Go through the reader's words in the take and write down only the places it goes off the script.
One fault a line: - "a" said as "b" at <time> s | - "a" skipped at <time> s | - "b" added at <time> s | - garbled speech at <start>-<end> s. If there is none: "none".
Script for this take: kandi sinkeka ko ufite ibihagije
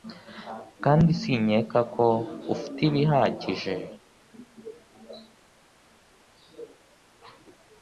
none